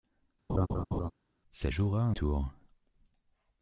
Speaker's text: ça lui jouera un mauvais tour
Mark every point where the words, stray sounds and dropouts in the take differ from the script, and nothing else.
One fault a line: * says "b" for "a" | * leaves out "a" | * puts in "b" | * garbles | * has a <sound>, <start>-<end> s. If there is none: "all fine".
* has a laugh, 0.5-1.1 s
* leaves out "lui"
* leaves out "mauvais"